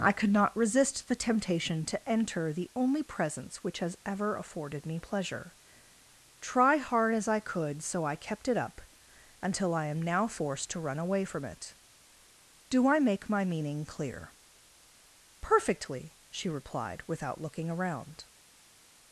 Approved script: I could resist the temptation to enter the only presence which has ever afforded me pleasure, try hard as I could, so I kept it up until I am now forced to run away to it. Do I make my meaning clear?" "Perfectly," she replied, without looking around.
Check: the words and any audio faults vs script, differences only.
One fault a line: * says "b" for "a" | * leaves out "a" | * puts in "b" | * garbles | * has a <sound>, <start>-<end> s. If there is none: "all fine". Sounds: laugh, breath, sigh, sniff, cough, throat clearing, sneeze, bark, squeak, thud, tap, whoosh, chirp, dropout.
* puts in "not"
* says "from" for "to"